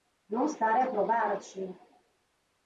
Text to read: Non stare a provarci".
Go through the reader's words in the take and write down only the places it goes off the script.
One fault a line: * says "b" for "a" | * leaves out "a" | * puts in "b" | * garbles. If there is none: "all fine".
all fine